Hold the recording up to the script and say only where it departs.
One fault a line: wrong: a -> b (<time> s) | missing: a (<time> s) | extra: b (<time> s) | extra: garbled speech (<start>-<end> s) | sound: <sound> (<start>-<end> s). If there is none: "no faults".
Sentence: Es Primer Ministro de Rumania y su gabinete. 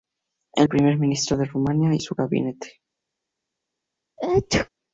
sound: sneeze (4.2-4.7 s)